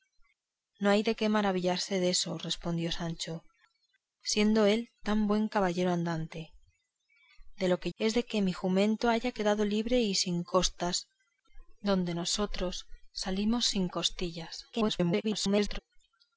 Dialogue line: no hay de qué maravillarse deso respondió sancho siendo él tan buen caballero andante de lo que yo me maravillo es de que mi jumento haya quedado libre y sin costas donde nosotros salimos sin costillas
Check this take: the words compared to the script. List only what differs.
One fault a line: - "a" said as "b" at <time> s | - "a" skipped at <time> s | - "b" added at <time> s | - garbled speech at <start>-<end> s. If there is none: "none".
- "yo me maravillo" skipped at 7.9 s
- garbled speech at 14.7-15.8 s